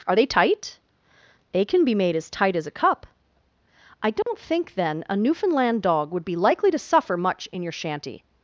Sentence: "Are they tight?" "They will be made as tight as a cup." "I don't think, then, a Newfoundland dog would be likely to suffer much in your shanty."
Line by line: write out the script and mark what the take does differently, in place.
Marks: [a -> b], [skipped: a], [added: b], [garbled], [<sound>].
"Are they tight?" "They [will -> can] be made as tight as a cup." "I don't [dropout] think, then, a Newfoundland dog would be likely to suffer much in your shanty."